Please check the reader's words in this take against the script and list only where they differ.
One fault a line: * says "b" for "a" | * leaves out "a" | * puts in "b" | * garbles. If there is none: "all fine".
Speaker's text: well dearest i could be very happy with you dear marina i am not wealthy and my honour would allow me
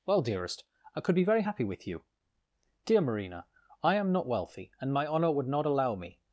* puts in "not"